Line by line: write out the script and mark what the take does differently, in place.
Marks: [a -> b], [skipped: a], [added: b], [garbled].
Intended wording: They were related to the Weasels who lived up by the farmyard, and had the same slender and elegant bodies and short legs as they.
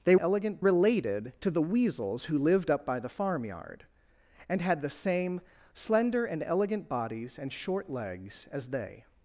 They [were -> elegant] related to the Weasels who lived up by the farmyard, and had the same slender and elegant bodies and short legs as they.